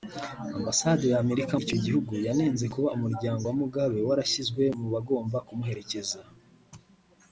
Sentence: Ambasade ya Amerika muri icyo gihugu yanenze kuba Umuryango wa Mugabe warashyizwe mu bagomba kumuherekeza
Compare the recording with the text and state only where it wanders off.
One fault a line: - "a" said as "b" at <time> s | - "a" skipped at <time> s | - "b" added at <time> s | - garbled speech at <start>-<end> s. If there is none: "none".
- "muri" skipped at 1.5 s